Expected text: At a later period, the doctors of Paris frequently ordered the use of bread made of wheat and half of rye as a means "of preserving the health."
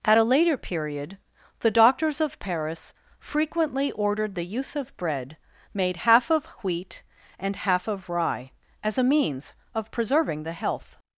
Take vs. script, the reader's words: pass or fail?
fail